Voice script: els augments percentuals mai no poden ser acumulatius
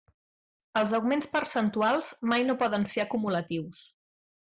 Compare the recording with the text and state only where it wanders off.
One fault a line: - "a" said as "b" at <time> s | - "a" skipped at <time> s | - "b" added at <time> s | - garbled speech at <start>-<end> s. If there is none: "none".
none